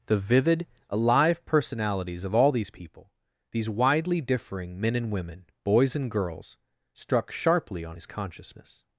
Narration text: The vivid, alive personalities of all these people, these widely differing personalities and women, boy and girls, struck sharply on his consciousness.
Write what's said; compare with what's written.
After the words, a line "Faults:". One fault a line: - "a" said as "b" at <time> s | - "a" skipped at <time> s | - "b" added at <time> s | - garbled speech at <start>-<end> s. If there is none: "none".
The vivid, alive personalities of all these people, these widely differing men and women, boys and girls, struck sharply on his consciousness.
Faults:
- "personalities" said as "men" at 4.8 s
- "boy" said as "boys" at 5.6 s